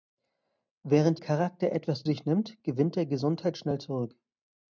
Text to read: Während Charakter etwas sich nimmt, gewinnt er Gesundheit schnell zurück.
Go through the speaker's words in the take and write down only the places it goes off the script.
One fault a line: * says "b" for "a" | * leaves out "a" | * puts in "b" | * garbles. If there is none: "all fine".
all fine